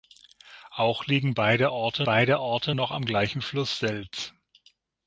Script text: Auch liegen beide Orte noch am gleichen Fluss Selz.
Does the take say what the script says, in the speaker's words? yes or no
no